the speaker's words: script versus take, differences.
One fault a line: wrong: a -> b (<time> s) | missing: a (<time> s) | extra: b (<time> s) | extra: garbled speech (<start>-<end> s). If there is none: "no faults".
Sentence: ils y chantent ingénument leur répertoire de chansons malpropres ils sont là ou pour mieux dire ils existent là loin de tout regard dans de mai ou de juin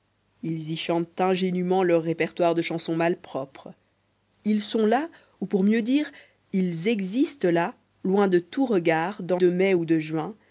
no faults